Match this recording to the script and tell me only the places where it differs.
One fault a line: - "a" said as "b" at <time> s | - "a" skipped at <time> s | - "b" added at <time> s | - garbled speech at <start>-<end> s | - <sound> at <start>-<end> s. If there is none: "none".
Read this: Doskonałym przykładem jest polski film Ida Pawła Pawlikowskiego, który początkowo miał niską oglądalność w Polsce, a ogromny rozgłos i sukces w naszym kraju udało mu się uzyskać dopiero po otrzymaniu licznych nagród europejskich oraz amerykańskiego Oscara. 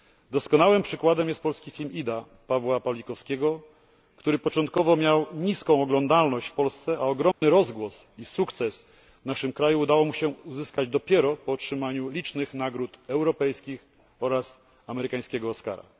- dropout at 7.3-7.4 s